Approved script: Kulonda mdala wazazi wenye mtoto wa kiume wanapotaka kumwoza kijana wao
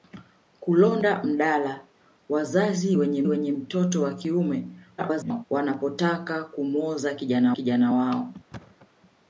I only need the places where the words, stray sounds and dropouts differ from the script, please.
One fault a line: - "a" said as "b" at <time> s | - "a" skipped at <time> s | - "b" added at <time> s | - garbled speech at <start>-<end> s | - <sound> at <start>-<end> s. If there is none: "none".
- "wenye" added at 3.3 s
- garbled speech at 5.0-5.4 s
- "kijana" added at 7.5 s
- thud at 8.5-8.9 s